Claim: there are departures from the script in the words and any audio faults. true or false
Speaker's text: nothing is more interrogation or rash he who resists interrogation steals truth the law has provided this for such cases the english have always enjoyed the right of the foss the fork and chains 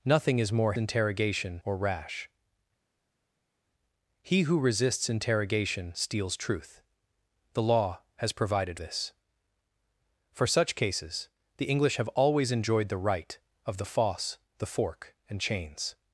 false